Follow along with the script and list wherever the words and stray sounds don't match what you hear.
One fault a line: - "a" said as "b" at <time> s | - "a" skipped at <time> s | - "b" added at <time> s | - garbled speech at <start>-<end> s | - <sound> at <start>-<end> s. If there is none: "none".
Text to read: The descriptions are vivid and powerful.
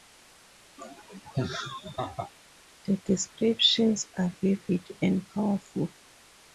- laugh at 0.8-2.3 s